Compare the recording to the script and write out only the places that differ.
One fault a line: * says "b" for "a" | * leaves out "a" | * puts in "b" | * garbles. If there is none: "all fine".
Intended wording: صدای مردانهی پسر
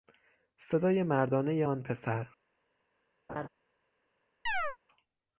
* puts in "آن"